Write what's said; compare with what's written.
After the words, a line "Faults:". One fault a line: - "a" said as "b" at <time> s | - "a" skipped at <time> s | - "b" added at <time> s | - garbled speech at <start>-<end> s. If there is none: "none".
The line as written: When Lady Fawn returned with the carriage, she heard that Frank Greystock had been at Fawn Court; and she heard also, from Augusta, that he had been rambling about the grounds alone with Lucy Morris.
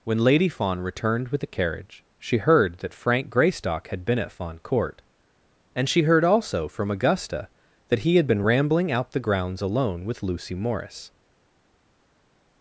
When Lady Fawn returned with the carriage, she heard that Frank Greystock had been at Fawn Court; and she heard also, from Augusta, that he had been rambling out the grounds alone with Lucy Morris.
Faults:
- "about" said as "out" at 8.9 s